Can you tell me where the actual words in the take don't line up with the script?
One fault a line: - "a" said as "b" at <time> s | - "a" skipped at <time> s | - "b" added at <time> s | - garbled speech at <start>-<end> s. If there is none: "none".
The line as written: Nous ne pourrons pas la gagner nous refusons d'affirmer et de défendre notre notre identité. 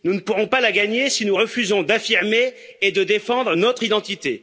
- "si" added at 1.1 s
- "notre" skipped at 3.8 s